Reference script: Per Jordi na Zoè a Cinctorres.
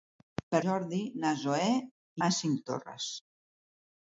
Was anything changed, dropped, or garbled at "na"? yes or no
no